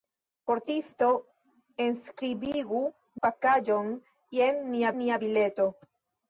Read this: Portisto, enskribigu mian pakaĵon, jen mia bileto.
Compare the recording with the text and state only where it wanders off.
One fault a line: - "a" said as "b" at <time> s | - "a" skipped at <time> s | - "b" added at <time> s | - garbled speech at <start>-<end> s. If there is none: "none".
- "mian" skipped at 2.8 s
- "mia" added at 5.0 s